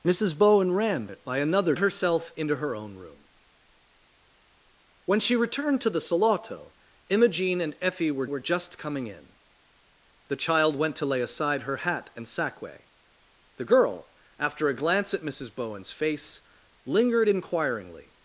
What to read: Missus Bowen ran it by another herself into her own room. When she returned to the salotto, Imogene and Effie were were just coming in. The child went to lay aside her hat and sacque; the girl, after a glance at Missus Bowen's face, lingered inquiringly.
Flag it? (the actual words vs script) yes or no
no